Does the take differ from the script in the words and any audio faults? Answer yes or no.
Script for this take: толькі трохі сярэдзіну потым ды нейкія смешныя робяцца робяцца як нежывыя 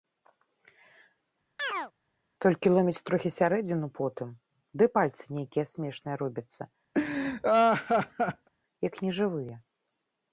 yes